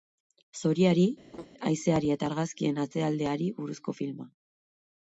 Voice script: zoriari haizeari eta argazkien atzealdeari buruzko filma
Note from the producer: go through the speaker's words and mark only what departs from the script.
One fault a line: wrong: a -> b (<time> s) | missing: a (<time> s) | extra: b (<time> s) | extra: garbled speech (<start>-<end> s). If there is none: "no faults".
no faults